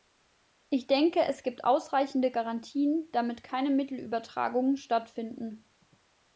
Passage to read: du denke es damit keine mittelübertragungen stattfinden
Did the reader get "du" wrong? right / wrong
wrong